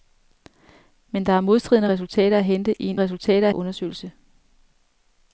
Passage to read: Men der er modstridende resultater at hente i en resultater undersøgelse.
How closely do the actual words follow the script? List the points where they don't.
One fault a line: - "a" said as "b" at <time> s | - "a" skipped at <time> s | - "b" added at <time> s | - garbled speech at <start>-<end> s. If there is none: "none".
none